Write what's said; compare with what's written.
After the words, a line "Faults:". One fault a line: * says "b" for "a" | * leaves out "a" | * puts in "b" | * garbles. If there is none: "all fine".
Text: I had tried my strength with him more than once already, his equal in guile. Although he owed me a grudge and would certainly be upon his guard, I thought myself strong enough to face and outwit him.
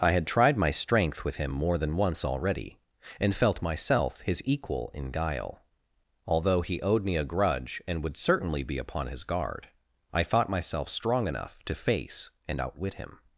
I had tried my strength with him more than once already, and felt myself his equal in guile. Although he owed me a grudge and would certainly be upon his guard, I thought myself strong enough to face and outwit him.
Faults:
* puts in "and felt myself"